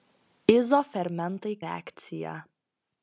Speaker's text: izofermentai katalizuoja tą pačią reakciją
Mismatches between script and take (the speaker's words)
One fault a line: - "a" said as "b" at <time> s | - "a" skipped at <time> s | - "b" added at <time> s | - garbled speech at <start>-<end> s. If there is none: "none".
- "katalizuoja tą pačią" skipped at 1.5 s